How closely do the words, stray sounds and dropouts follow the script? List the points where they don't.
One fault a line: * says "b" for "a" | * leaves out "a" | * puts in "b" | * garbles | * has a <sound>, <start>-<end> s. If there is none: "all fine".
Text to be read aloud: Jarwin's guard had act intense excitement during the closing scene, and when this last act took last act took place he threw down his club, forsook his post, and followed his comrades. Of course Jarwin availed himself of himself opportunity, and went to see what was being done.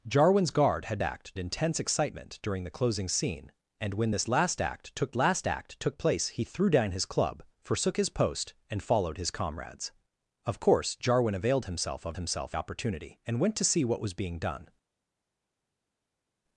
all fine